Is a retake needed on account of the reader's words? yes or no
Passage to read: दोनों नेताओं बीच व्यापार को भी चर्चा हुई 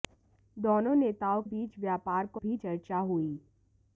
no